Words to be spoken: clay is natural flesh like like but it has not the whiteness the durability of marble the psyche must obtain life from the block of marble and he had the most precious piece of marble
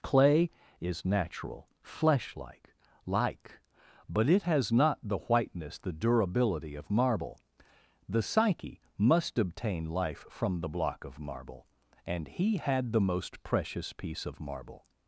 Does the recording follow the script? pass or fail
pass